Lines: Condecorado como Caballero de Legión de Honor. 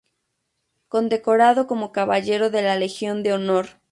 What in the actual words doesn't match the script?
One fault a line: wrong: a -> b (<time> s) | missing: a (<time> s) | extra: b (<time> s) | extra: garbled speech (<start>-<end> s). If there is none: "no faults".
extra: la (2.6 s)